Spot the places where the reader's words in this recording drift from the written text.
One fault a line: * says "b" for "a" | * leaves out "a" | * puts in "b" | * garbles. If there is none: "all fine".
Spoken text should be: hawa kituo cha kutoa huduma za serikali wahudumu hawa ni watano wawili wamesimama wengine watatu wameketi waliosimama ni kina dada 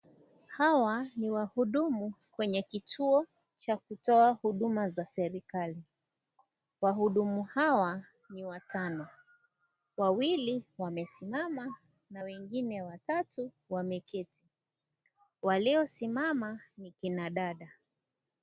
* puts in "ni wahudumu kwenye"
* puts in "na"